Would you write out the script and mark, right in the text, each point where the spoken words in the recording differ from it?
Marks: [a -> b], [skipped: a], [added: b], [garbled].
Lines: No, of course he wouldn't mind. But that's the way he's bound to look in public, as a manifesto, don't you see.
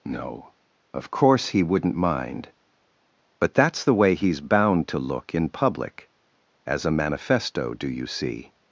No, of course he wouldn't mind. But that's the way he's bound to look in public, as a manifesto, [don't -> do] you see.